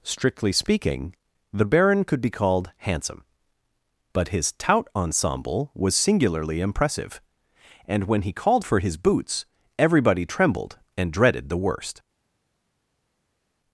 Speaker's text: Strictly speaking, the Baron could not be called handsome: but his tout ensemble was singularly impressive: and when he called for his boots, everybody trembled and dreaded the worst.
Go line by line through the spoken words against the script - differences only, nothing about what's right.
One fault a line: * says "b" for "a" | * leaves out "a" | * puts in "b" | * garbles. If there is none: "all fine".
* leaves out "not"